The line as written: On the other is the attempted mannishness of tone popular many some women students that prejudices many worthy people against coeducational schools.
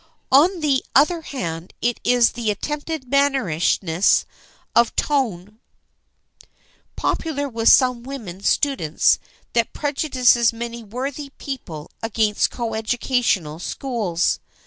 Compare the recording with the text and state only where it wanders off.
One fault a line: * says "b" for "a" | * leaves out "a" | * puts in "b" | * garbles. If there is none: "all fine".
* puts in "hand it"
* says "with" for "many"